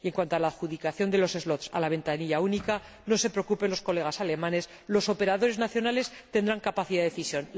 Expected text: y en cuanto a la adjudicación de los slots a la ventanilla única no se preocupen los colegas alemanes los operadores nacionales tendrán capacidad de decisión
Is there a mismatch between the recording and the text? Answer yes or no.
no